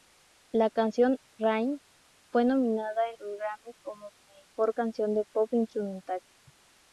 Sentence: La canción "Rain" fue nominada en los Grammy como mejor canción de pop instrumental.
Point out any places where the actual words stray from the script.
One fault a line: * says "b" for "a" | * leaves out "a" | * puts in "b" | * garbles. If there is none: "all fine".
all fine